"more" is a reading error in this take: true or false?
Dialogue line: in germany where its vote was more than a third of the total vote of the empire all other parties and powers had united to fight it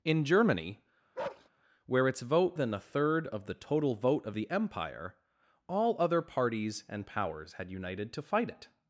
true